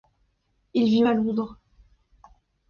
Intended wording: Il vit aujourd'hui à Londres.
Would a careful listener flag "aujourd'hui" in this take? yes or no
yes